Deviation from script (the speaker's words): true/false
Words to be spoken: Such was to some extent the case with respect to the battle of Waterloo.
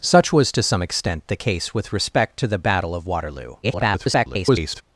true